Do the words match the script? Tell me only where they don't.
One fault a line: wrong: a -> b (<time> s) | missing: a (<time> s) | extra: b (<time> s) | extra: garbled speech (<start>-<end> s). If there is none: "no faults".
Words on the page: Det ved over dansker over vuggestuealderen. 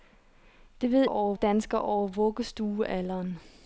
no faults